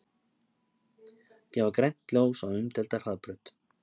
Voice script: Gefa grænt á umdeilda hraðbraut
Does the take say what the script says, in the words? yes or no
no